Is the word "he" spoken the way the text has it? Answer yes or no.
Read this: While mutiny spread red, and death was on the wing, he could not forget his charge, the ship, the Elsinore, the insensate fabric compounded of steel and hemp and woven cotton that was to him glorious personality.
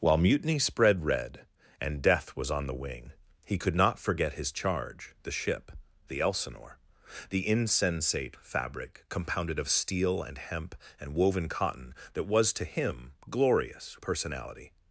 yes